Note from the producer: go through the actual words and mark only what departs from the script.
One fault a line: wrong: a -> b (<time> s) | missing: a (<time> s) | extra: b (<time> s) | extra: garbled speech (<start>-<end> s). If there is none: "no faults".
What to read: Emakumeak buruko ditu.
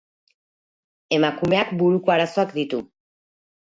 extra: arazoak (2.2 s)